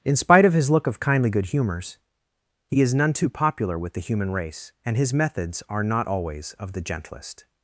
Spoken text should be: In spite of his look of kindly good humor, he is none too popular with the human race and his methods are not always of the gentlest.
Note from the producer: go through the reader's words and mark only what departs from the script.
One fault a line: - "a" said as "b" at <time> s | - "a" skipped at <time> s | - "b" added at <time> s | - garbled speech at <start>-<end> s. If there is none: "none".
- "humor" said as "humors" at 1.5 s